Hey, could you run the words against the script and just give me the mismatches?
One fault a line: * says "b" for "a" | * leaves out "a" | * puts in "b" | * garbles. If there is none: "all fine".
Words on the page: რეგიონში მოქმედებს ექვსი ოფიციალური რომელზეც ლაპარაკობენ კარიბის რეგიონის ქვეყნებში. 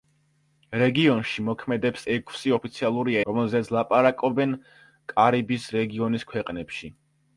all fine